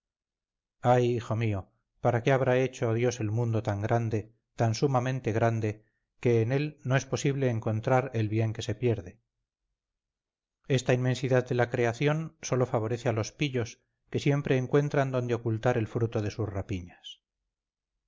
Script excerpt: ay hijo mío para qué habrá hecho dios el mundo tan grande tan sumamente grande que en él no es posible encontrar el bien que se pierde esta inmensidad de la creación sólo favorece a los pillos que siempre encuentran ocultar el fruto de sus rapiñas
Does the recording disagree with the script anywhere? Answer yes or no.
yes